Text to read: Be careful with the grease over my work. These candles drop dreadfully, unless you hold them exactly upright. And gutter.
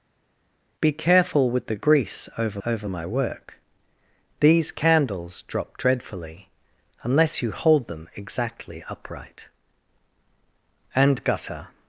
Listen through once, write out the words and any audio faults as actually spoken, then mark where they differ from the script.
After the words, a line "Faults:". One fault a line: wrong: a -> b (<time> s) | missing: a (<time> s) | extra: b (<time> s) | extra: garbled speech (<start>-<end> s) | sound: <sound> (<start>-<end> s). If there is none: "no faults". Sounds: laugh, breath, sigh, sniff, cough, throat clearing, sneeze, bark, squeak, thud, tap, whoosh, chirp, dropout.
Be careful with the grease over over my work. These candles drop dreadfully, unless you hold them exactly upright. And gutter.
Faults:
extra: over (2.7 s)